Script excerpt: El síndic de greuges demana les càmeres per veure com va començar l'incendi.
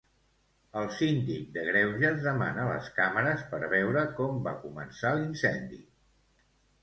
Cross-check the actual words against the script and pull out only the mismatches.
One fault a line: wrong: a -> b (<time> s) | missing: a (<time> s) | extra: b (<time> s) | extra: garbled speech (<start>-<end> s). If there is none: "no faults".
no faults